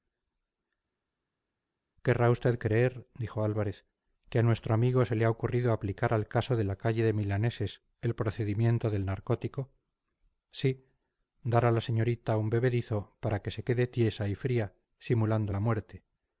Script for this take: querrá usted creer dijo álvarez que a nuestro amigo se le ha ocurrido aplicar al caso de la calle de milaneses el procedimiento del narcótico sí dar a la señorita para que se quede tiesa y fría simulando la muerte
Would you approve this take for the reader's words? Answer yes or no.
no